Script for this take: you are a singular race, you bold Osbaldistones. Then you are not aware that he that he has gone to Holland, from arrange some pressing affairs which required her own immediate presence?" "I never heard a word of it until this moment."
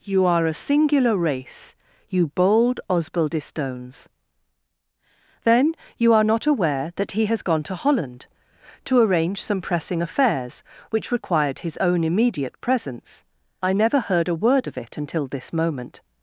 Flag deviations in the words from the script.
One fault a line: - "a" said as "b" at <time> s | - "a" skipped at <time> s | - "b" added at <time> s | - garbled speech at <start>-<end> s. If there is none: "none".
- "that he" skipped at 7.2 s
- "from" said as "to" at 8.8 s
- "her" said as "his" at 11.6 s